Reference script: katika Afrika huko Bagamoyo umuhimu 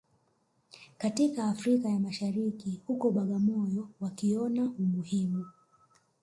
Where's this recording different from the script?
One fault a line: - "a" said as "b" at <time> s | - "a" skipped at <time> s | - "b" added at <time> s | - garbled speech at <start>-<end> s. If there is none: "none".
- "ya Mashariki" added at 1.9 s
- "wakiona" added at 4.0 s